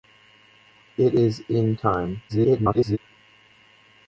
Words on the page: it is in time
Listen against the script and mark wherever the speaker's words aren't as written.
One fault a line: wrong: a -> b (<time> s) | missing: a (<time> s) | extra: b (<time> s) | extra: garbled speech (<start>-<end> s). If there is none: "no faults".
extra: garbled speech (2.3-3.0 s)